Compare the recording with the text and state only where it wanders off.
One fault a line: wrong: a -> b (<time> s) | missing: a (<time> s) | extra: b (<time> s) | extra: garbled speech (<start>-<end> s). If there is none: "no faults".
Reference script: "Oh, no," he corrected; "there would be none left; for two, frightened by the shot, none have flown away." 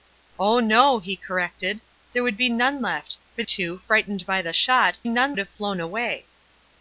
no faults